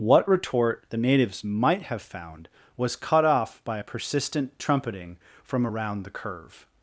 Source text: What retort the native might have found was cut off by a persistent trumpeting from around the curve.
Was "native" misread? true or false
true